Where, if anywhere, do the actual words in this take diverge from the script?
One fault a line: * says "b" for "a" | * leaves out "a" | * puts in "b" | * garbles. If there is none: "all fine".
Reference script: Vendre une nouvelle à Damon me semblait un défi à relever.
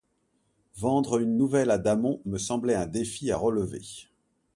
all fine